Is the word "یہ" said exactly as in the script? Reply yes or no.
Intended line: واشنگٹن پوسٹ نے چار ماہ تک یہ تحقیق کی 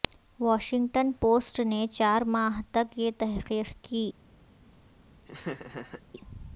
yes